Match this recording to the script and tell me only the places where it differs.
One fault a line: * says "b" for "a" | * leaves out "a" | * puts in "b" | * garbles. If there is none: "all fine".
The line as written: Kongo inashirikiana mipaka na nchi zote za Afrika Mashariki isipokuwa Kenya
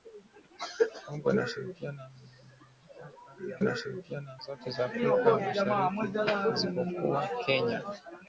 * says "inashirikiana" for "nchi"